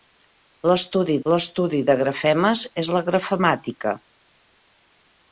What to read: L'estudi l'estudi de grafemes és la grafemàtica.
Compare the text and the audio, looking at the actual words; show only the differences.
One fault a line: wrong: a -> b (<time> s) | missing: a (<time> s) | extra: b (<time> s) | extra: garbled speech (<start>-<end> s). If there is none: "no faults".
no faults